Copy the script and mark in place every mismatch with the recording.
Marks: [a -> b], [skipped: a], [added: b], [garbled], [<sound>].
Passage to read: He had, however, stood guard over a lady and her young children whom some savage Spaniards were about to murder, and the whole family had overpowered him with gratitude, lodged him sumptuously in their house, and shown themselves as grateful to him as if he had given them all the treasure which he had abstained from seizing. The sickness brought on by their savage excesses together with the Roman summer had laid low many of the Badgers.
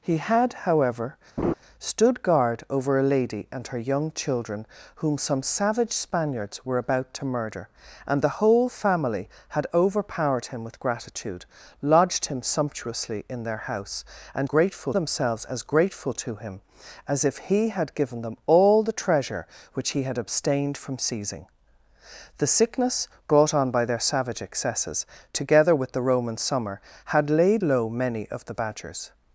He had, however, [laugh] stood guard over a lady and her young children whom some savage Spaniards were about to murder, and the whole family had overpowered him with gratitude, lodged him sumptuously in their house, and [shown -> grateful] themselves as grateful to him as if he had given them all the treasure which he had abstained from seizing. The sickness brought on by their savage excesses together with the Roman summer had laid low many of the Badgers.